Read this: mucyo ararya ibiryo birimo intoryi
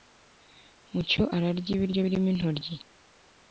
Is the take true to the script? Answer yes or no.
yes